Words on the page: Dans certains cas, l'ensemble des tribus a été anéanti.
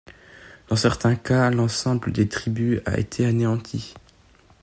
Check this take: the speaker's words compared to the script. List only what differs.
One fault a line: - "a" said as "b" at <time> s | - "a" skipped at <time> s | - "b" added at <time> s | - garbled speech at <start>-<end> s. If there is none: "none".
none